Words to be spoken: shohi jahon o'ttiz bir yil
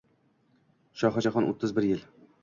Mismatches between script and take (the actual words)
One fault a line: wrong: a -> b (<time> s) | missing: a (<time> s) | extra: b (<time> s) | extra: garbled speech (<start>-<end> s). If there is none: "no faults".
no faults